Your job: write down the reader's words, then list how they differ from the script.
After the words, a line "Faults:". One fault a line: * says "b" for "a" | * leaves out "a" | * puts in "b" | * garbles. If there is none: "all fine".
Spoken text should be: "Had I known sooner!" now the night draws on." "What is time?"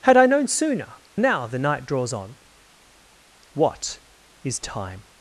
"Had I known sooner!" now the night draws on." "What is time?"
Faults:
all fine